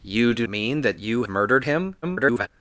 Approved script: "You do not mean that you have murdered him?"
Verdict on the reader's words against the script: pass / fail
fail